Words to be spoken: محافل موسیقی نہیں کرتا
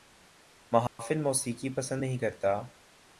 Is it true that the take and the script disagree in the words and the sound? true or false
true